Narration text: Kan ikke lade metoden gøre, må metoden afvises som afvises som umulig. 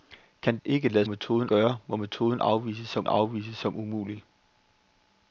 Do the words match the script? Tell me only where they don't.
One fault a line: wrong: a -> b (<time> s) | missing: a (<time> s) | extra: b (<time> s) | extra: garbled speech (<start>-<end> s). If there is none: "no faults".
no faults